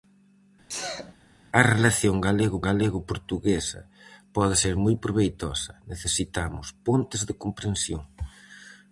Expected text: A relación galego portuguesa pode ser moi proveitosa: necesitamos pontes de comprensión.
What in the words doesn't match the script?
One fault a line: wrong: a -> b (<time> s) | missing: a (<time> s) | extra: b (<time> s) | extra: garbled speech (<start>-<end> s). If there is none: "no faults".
extra: galego (2.7 s)